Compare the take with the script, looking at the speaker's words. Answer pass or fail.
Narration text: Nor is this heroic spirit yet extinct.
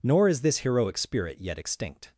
pass